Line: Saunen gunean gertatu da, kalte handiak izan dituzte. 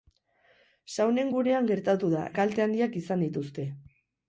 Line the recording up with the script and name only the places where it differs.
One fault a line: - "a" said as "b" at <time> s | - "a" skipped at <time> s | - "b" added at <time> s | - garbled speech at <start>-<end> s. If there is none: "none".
none